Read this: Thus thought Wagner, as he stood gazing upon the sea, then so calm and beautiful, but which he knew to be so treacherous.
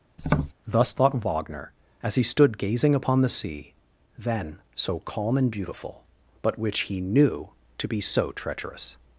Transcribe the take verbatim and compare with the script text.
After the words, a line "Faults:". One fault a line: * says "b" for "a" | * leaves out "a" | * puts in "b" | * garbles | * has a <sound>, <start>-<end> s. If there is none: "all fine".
Thus thought Wagner, as he stood gazing upon the sea, then so calm and beautiful, but which he knew to be so treacherous.
Faults:
* has a tap, 0.2-0.5 s